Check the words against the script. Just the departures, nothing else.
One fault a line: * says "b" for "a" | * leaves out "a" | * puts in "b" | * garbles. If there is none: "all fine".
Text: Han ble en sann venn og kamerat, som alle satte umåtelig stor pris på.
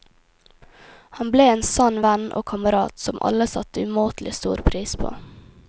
all fine